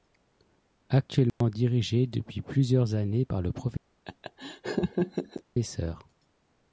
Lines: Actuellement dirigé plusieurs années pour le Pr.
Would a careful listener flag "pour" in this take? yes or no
yes